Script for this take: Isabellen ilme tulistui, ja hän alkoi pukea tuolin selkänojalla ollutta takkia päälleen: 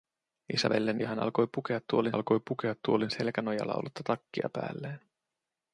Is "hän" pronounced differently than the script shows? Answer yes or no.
yes